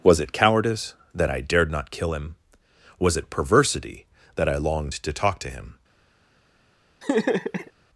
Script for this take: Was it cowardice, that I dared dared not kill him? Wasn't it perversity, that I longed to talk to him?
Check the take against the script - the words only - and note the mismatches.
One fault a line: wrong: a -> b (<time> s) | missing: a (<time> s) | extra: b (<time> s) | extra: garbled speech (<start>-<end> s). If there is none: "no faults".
missing: dared (1.7 s)
wrong: Wasn't -> Was (3.0 s)